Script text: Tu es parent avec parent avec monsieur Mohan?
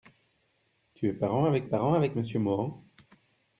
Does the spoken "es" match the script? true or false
true